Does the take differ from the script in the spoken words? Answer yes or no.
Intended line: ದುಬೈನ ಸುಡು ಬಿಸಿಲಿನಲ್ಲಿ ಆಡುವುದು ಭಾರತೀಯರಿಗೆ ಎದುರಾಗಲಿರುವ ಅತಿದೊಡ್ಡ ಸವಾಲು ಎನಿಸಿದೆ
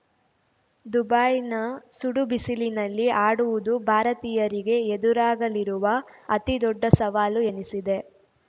no